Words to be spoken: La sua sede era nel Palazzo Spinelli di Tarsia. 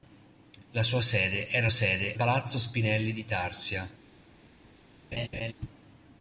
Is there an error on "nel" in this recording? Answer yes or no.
yes